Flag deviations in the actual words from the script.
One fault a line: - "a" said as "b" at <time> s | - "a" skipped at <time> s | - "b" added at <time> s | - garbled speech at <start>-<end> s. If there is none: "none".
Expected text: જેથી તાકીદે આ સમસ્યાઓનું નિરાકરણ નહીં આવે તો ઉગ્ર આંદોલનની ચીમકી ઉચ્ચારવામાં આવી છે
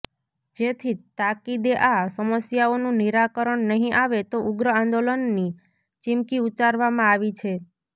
none